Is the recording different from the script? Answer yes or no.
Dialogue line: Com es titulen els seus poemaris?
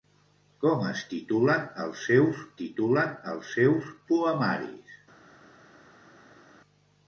yes